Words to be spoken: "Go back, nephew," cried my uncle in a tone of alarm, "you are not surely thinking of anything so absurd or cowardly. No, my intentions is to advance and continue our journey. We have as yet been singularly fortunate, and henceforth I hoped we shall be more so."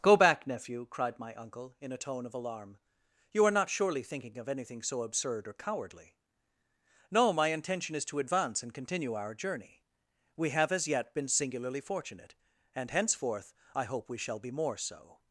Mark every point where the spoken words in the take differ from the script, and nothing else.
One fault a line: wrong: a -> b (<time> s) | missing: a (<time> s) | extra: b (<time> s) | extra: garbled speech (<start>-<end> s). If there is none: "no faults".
wrong: intentions -> intention (7.5 s)
wrong: hoped -> hope (13.8 s)